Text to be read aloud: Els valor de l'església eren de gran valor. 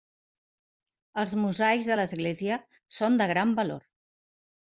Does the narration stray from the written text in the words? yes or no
yes